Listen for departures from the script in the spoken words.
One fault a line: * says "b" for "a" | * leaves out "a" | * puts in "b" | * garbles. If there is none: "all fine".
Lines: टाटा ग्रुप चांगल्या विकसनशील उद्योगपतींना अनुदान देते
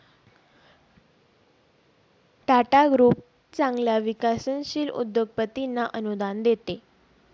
all fine